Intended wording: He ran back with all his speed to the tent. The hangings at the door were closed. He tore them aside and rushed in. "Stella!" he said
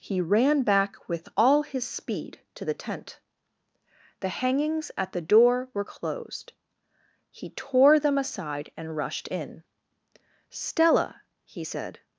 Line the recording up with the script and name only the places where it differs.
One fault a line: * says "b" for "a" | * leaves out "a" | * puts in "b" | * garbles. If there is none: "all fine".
all fine